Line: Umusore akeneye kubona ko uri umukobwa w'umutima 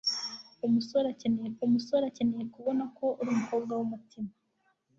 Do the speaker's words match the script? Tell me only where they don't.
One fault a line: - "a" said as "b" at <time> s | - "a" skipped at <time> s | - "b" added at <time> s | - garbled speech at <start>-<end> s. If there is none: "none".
- "umusore akeneye" added at 1.6 s